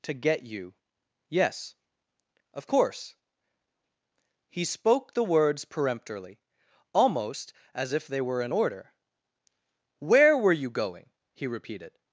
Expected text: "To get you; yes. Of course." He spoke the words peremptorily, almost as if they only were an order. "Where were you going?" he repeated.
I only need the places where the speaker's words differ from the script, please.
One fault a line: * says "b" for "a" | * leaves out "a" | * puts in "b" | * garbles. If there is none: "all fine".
* leaves out "only"